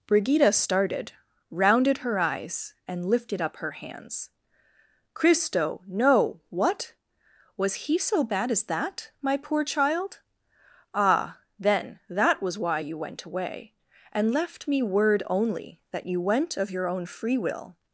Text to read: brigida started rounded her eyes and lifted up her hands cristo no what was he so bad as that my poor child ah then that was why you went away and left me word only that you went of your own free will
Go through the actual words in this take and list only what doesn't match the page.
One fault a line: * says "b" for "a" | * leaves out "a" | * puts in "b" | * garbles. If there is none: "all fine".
all fine